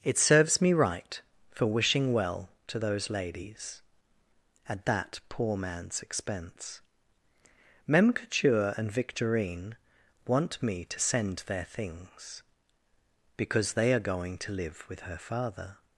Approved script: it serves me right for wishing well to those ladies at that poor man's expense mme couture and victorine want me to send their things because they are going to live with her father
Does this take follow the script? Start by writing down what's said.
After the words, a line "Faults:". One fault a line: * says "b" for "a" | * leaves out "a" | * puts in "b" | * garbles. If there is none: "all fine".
it serves me right for wishing well to those ladies at that poor man's expense mem couture and victorine want me to send their things because they are going to live with her father
Faults:
* says "mem" for "mme"